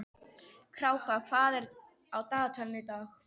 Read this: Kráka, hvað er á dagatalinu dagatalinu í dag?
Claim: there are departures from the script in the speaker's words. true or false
true